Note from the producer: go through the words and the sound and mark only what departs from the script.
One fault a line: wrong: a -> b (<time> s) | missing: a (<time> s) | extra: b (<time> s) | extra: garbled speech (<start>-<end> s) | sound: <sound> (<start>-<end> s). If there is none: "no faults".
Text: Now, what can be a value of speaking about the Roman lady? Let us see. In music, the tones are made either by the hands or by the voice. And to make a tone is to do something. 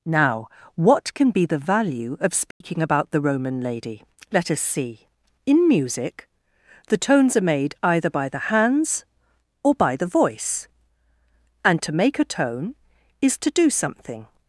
wrong: a -> the (1.4 s)
sound: dropout (2.5-2.6 s)